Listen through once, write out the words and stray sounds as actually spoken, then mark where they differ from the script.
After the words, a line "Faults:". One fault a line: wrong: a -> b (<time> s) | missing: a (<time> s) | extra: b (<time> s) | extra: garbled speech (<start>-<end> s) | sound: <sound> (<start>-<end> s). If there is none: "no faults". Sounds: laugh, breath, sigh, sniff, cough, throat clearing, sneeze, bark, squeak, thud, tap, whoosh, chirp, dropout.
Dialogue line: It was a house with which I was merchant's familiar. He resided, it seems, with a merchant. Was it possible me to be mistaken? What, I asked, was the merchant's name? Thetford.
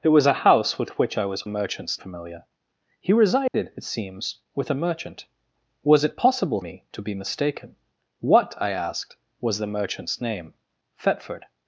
It was a house with which I was merchant's familiar. He resided, it seems, with a merchant. Was it possible me to be mistaken? What, I asked, was the merchant's name? Thetford.
Faults:
sound: dropout (3.5-3.5 s)